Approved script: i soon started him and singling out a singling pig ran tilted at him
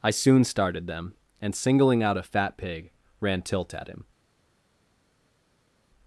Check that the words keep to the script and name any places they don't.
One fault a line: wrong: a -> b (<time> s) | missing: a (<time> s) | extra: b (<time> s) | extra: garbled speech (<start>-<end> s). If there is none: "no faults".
wrong: him -> them (0.9 s)
wrong: singling -> fat (2.2 s)
wrong: tilted -> tilt (3.4 s)